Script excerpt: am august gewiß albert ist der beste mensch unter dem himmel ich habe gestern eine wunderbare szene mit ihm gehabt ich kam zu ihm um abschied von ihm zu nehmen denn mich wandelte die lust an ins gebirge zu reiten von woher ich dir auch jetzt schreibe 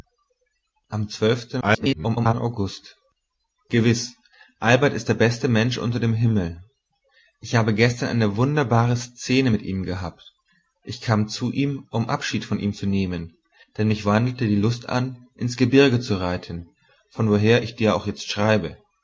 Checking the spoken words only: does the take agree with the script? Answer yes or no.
no